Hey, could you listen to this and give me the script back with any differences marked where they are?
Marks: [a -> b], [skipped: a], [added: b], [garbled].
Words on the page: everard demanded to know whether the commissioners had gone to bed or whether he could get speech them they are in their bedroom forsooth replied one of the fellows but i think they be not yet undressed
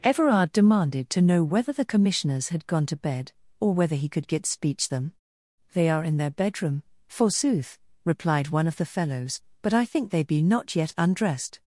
everard demanded to know whether the commissioners had gone to bed or whether he could get speech them they are in their bedroom forsooth replied one of the fellows but i think they be not yet undressed